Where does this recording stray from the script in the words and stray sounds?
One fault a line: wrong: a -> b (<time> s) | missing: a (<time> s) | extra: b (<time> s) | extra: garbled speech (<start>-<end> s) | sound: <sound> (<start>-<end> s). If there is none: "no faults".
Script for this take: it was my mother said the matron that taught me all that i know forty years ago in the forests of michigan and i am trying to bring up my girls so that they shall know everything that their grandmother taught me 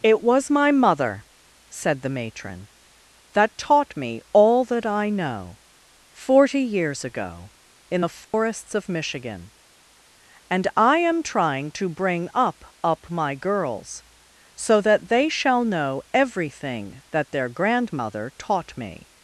sound: dropout (8.2-8.3 s)
extra: up (12.8 s)